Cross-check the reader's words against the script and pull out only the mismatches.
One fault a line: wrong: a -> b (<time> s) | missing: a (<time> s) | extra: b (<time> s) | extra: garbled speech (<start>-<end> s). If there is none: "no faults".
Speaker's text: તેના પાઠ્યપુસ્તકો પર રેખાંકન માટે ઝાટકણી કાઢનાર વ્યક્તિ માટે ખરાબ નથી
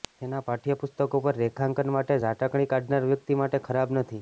no faults